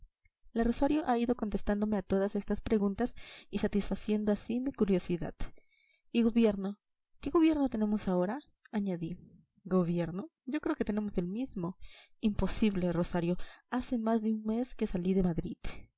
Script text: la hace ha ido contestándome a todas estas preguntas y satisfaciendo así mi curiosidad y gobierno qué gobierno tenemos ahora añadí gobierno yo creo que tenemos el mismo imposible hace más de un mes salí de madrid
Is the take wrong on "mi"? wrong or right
right